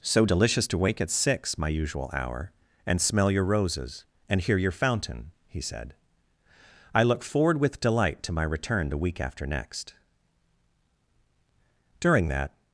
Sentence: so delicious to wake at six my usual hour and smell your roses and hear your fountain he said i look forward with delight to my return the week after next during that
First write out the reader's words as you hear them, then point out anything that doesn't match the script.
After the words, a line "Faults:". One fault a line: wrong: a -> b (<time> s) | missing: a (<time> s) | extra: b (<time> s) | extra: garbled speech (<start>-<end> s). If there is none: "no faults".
so delicious to wake at six my usual hour and smell your roses and hear your fountain he said i look forward with delight to my return the week after next during that
Faults:
no faults